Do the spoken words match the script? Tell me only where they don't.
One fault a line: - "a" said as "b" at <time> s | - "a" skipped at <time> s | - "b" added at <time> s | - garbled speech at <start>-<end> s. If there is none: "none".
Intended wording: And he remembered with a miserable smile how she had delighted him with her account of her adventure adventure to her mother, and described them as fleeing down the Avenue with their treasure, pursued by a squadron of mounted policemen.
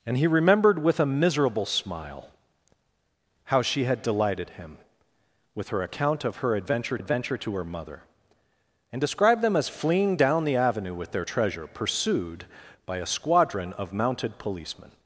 none